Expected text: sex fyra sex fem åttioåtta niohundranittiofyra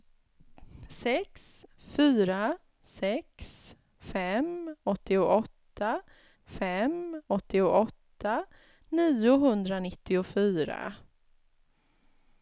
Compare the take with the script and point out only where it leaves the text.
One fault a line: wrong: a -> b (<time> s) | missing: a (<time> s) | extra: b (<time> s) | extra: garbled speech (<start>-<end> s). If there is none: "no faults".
extra: fem åttioåtta (6.4 s)